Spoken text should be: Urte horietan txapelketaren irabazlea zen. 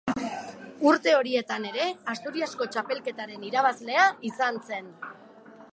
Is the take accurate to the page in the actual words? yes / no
no